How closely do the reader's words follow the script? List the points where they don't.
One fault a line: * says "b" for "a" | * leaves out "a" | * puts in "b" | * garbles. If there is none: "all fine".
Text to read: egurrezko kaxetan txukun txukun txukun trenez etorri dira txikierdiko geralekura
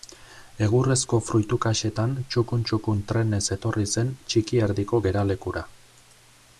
* puts in "fruitu"
* leaves out "txukun"
* says "zen" for "dira"